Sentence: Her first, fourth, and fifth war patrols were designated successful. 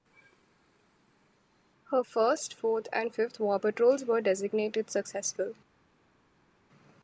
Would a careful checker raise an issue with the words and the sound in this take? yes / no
no